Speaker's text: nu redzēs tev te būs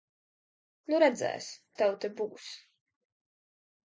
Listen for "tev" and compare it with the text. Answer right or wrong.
right